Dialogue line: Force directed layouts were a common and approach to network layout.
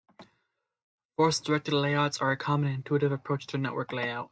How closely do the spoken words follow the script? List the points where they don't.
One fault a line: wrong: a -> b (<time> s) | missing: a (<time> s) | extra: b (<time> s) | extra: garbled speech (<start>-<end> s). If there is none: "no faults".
wrong: were -> are (2.2 s)
extra: intuitive (2.8 s)